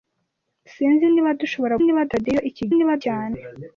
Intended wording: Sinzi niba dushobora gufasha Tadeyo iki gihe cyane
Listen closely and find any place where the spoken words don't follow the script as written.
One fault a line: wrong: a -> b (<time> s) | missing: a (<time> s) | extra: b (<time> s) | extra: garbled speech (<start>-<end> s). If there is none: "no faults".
wrong: gufasha -> niba (1.8 s)
wrong: gihe -> niba (2.7 s)